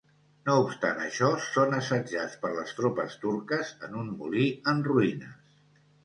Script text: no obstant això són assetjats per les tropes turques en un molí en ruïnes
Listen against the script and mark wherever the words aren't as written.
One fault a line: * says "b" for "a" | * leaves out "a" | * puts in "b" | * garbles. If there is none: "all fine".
all fine